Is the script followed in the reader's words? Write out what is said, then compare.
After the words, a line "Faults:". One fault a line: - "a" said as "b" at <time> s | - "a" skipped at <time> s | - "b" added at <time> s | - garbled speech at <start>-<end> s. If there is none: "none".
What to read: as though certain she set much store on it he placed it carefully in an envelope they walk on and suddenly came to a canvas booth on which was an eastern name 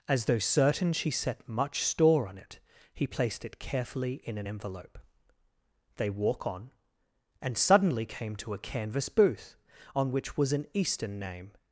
as though certain she set much store on it he placed it carefully in an envelope they walk on and suddenly came to a canvas booth on which was an eastern name
Faults:
none